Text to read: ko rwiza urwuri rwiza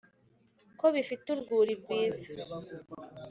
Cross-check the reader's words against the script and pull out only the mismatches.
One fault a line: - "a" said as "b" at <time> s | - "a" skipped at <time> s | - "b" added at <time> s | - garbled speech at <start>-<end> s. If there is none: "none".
- "rwiza" said as "bifite" at 0.9 s